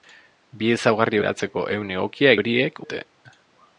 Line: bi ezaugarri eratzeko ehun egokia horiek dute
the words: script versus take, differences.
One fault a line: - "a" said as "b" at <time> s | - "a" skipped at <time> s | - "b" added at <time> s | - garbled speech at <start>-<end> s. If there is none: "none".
none